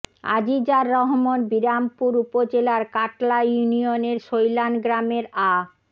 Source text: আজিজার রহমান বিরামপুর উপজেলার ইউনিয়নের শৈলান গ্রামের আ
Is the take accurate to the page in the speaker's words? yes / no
no